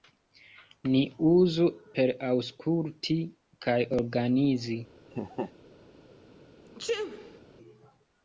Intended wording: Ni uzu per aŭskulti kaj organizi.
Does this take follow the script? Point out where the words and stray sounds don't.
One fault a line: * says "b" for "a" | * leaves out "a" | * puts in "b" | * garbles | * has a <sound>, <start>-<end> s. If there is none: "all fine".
* has a laugh, 5.1-5.5 s
* has a sneeze, 6.7-7.4 s